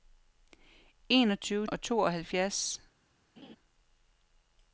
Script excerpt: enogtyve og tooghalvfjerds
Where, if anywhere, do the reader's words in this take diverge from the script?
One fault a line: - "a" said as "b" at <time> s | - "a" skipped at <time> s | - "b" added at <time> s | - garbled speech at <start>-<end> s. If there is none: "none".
none